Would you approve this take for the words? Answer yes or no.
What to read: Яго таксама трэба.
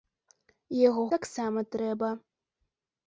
yes